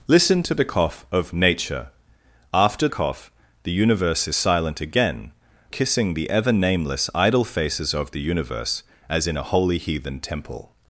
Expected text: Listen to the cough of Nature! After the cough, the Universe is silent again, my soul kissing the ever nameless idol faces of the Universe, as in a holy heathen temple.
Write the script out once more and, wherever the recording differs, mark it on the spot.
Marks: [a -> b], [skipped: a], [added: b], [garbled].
Listen to the cough of Nature! After [skipped: the] cough, the Universe is silent again, [skipped: my soul] kissing the ever nameless idol faces of the Universe, as in a holy heathen temple.